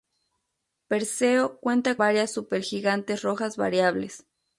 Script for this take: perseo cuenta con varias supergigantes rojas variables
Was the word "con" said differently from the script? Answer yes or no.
yes